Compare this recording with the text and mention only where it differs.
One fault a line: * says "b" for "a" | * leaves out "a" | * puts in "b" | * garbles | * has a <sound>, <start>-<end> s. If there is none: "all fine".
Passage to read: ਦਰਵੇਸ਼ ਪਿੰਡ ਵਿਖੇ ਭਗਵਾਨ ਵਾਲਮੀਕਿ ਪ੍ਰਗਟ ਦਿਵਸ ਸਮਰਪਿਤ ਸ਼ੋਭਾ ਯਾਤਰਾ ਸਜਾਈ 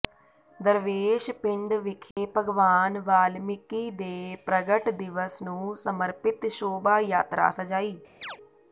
* has a dropout, 2.1-2.2 s
* puts in "ਦੇ"
* puts in "ਨੂੰ"
* has a chirp, 8.2-8.4 s